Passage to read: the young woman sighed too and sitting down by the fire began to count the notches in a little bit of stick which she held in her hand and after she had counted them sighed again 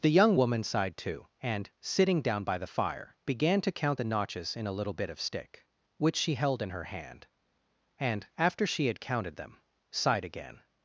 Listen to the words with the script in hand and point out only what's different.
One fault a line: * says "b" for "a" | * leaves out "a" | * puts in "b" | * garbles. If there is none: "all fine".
all fine